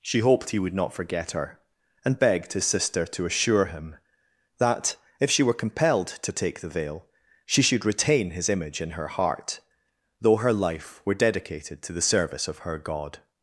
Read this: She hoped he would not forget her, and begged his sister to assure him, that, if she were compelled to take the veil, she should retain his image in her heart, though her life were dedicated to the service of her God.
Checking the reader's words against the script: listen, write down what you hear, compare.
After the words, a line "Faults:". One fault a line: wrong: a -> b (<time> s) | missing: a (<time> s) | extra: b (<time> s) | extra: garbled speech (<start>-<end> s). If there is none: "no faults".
She hoped he would not forget her, and begged his sister to assure him, that, if she were compelled to take the veil, she should retain his image in her heart, though her life were dedicated to the service of her God.
Faults:
no faults